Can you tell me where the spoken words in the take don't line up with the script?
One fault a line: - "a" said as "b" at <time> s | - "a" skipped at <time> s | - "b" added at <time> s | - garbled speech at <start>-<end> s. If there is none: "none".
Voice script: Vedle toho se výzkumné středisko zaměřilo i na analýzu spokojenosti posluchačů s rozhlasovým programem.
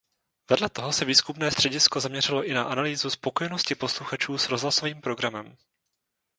none